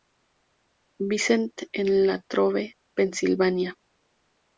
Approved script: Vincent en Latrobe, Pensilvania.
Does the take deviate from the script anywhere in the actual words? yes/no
no